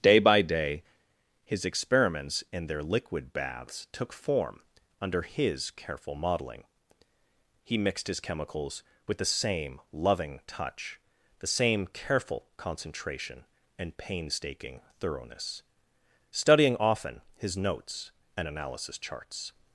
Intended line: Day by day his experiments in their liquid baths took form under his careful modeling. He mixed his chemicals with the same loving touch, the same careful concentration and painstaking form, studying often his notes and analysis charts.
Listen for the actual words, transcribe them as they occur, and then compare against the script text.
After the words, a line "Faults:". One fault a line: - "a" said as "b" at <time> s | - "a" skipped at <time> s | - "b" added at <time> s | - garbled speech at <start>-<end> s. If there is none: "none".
Day by day his experiments in their liquid baths took form under his careful modeling. He mixed his chemicals with the same loving touch, the same careful concentration and painstaking thoroughness, studying often his notes and analysis charts.
Faults:
- "form" said as "thoroughness" at 15.0 s